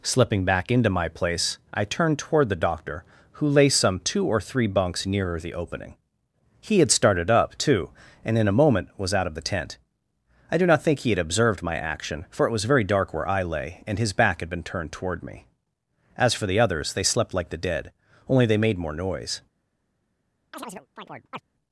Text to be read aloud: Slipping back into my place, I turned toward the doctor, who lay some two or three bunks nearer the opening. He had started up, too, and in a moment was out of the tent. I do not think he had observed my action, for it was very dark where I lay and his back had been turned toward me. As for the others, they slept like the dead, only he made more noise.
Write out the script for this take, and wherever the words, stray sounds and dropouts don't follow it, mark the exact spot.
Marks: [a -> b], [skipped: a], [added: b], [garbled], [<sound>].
Slipping back into my place, I turned toward the doctor, who lay some two or three bunks nearer the opening. He had started up, too, and in a moment was out of the tent. I do not think he had observed my action, for it was very dark where I lay and his back had been turned toward me. As for the others, they slept like the dead, only [he -> they] made more noise. [chirp]